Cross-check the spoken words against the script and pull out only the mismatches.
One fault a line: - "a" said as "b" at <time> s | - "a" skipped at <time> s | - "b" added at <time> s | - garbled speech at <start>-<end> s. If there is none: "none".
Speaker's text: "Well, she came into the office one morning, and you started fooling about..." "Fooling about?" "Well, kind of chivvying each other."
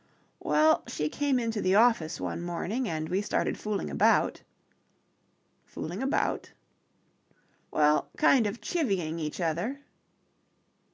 - "you" said as "we" at 3.1 s